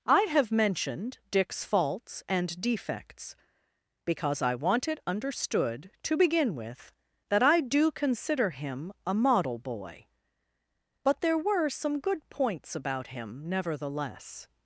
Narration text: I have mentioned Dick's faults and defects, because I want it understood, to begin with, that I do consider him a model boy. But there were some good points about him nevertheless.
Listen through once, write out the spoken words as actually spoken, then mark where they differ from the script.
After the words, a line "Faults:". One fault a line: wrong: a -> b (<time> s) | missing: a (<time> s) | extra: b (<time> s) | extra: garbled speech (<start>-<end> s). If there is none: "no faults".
I have mentioned Dick's faults and defects, because I want it understood, to begin with, that I do consider him a model boy. But there were some good points about him nevertheless.
Faults:
no faults